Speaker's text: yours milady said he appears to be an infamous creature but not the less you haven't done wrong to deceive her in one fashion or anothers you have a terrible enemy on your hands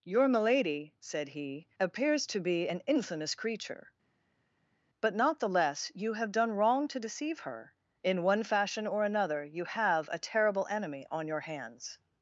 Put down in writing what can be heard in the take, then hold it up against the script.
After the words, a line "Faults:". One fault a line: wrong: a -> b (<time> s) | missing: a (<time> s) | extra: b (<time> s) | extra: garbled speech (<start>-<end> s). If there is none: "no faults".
your milady said he appears to be an infamous creature but not the less you have done wrong to deceive her in one fashion or another you have a terrible enemy on your hands
Faults:
wrong: yours -> your (0.0 s)
wrong: haven't -> have (6.1 s)
wrong: anothers -> another (9.0 s)